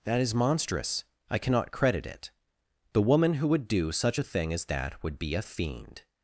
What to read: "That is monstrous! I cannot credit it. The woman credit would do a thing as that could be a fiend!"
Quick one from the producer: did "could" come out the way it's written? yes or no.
no